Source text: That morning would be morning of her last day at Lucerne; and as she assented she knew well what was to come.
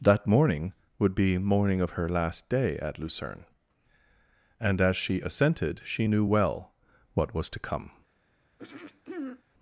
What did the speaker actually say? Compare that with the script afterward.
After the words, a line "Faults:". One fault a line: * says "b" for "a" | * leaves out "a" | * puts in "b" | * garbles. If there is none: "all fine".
That morning would be morning of her last day at Lucerne; and as she assented she knew well what was to come.
Faults:
all fine